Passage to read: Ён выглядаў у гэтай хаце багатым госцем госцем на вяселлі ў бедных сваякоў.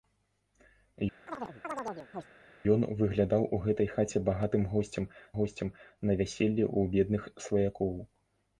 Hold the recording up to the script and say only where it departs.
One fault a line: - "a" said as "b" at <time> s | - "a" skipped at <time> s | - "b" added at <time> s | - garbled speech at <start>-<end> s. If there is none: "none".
none